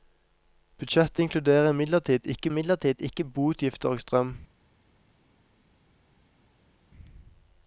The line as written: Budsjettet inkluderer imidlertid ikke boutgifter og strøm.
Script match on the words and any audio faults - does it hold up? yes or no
no